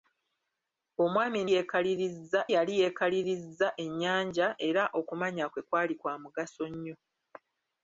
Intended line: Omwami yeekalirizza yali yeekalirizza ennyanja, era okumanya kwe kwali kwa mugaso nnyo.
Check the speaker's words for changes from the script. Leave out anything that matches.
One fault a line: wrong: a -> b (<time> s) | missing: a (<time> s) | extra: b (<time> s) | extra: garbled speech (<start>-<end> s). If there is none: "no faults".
no faults